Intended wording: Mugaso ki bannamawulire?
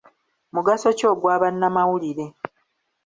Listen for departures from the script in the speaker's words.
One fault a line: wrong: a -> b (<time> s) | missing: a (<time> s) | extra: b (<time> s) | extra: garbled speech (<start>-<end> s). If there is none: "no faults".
extra: ogwa (1.1 s)